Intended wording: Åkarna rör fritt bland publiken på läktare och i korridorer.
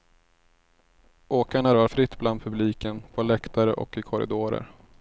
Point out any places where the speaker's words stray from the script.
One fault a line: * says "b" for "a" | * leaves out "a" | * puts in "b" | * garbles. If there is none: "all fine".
all fine